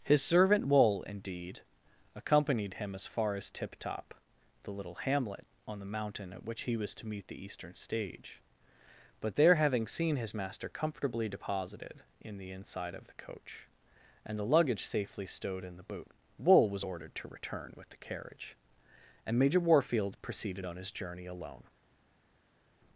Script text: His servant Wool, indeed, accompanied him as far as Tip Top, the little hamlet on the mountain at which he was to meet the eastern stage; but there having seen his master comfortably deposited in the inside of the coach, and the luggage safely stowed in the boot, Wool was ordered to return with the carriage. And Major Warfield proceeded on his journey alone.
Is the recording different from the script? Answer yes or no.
no